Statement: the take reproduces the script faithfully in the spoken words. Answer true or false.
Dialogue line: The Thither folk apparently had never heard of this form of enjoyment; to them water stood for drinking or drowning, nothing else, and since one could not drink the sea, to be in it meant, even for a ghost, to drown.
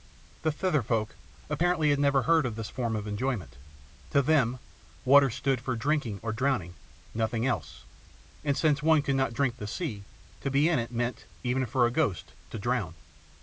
true